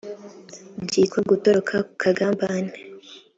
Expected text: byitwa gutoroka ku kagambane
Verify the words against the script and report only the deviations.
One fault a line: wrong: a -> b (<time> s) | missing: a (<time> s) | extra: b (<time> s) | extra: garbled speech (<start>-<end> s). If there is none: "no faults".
no faults